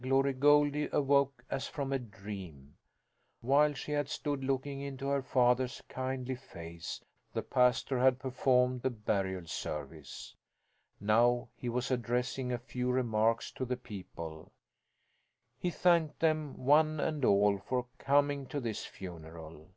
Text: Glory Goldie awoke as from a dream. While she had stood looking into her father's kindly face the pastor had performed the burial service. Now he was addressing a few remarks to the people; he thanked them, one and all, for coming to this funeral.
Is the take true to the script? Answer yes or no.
yes